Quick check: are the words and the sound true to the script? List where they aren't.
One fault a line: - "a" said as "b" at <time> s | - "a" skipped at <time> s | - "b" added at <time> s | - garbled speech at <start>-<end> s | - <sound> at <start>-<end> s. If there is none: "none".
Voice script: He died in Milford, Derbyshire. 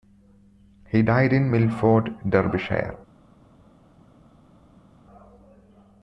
none